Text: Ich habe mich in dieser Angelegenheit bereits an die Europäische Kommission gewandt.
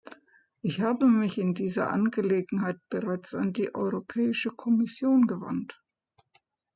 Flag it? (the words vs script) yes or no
no